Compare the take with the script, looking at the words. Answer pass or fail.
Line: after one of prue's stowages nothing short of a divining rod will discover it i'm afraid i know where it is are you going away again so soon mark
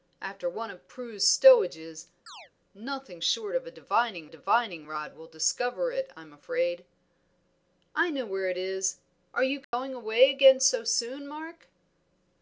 fail